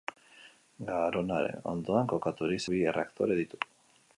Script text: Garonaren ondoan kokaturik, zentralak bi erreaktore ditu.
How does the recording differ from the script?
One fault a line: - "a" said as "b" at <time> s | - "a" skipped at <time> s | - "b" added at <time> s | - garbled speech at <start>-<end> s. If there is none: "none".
- "zentralak" skipped at 2.6 s